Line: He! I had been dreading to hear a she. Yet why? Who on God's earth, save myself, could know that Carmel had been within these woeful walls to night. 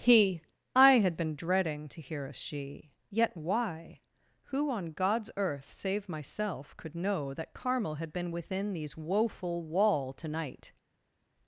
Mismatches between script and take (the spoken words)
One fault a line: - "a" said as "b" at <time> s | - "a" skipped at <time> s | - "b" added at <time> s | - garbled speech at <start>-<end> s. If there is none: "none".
- "walls" said as "wall" at 9.6 s